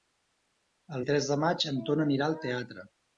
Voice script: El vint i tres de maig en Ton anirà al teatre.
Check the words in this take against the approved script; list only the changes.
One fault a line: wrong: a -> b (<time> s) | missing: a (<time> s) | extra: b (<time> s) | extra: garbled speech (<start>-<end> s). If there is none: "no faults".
missing: vint (1.1 s)